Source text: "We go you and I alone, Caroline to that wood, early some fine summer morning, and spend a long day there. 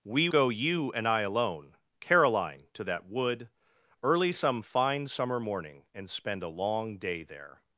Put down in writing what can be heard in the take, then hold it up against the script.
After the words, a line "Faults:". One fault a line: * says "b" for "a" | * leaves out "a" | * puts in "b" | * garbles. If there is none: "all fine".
"We go you and I alone, Caroline to that wood, early some fine summer morning, and spend a long day there.
Faults:
all fine